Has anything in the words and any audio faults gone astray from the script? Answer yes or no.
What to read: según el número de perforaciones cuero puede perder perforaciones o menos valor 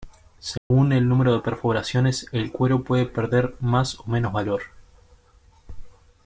yes